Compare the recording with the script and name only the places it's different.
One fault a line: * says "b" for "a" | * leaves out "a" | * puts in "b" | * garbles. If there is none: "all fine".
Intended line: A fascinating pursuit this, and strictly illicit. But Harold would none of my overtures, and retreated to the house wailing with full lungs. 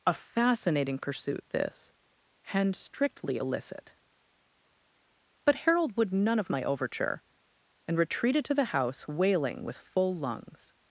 * says "overture" for "overtures"